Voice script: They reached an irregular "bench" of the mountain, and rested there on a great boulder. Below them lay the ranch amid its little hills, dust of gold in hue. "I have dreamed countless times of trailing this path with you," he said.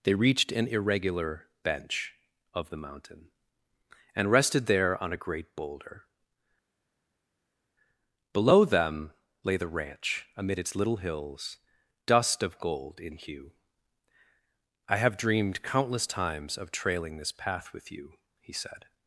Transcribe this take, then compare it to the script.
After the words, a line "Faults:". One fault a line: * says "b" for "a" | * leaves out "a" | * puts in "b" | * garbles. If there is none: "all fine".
They reached an irregular "bench" of the mountain, and rested there on a great boulder. Below them lay the ranch amid its little hills, dust of gold in hue. "I have dreamed countless times of trailing this path with you," he said.
Faults:
all fine